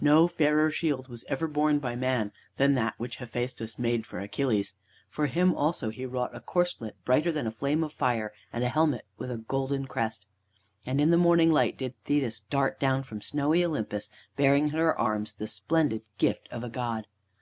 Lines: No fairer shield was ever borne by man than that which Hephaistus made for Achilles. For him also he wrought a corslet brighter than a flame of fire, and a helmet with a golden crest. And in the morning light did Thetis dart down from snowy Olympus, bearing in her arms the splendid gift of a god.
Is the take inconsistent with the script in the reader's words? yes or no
no